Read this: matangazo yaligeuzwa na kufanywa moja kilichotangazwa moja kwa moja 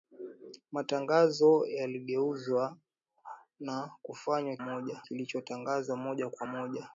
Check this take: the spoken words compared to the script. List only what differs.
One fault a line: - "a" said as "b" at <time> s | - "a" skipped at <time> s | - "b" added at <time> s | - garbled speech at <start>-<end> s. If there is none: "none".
none